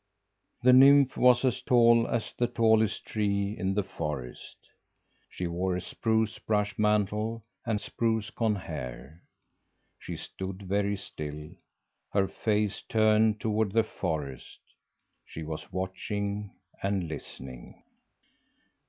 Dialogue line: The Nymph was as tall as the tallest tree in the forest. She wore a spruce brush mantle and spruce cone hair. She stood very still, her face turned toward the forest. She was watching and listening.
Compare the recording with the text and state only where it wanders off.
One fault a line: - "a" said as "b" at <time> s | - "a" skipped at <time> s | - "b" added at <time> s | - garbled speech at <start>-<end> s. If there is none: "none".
none